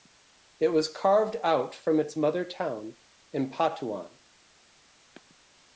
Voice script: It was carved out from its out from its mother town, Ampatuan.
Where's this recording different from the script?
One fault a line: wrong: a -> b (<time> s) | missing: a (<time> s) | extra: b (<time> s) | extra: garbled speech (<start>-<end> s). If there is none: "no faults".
missing: out from its (2.2 s)